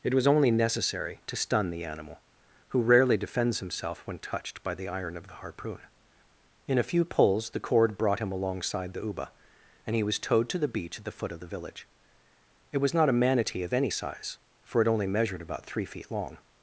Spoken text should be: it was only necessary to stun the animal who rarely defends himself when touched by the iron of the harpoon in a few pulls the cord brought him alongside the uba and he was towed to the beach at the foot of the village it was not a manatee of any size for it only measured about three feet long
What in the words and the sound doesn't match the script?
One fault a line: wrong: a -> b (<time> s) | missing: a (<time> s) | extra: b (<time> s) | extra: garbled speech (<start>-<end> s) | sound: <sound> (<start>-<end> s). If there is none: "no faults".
no faults